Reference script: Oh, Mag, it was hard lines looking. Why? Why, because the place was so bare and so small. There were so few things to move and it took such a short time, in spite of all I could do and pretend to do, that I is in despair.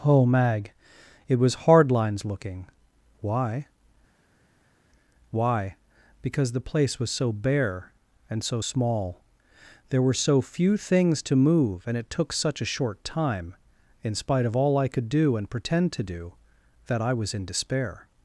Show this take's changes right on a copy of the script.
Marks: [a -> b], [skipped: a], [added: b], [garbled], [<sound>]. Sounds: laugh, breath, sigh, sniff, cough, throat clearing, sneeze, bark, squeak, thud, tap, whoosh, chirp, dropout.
Oh, Mag, it was hard lines looking. Why? Why, because the place was so bare and so small. There were so few things to move and it took such a short time, in spite of all I could do and pretend to do, that I [is -> was] in despair.